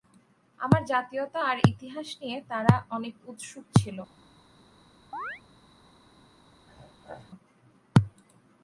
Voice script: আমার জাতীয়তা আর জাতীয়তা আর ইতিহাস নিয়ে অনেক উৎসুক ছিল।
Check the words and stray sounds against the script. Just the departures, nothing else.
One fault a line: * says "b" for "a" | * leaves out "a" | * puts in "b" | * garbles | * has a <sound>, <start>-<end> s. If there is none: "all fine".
* leaves out "জাতীয়তা আর"
* puts in "তারা"
* has a chirp, 5.1-5.4 s
* has a throat clearing, 6.7-7.3 s